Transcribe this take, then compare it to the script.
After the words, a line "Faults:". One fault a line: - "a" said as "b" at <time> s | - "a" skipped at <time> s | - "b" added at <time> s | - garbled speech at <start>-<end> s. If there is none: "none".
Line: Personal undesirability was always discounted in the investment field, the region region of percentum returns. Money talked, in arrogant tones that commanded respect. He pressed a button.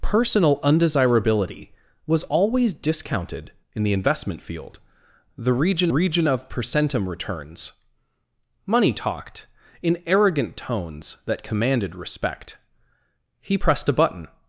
Personal undesirability was always discounted in the investment field, the region region of percentum returns. Money talked, in arrogant tones that commanded respect. He pressed a button.
Faults:
none